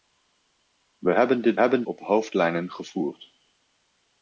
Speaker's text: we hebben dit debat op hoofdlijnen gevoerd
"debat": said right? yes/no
no